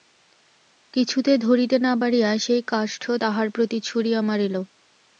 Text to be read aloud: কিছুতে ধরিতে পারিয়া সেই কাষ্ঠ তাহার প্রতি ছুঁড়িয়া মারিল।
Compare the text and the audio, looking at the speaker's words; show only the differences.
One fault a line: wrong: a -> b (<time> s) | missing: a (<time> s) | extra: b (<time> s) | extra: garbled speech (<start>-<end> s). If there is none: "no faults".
extra: না (1.8 s)